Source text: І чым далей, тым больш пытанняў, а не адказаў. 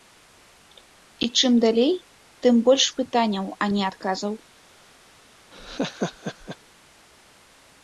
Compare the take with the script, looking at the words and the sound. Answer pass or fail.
fail